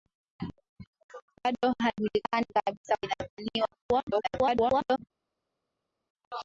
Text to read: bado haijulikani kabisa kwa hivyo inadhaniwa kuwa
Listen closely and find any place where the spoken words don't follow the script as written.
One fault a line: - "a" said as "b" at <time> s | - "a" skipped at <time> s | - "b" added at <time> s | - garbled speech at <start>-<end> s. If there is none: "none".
- "kwa hivyo" skipped at 3.0 s
- garbled speech at 4.1-5.0 s